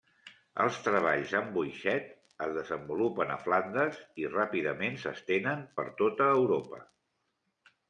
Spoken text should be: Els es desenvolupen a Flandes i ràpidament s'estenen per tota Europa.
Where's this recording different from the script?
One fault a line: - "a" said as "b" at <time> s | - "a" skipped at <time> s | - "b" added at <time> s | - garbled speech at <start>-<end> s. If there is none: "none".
- "treballs amb boixet" added at 0.8 s